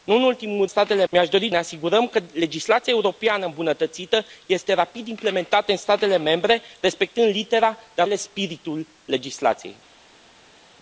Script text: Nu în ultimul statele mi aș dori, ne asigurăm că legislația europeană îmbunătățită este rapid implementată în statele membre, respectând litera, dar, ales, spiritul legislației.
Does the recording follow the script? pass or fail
pass